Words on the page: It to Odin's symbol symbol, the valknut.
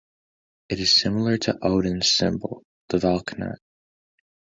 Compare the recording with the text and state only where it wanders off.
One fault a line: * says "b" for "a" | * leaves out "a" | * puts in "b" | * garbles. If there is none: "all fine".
* puts in "is similar"
* leaves out "symbol"